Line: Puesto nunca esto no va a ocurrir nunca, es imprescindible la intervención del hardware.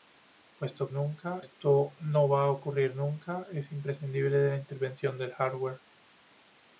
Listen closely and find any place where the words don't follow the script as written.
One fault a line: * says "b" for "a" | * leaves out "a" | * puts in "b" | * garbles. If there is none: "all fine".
all fine